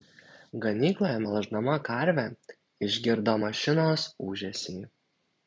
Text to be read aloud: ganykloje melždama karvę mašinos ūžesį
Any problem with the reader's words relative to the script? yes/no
yes